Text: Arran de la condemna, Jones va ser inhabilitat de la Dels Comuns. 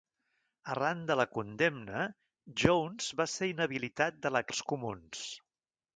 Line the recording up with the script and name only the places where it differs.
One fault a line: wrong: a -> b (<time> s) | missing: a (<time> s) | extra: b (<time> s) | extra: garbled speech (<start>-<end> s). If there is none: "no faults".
no faults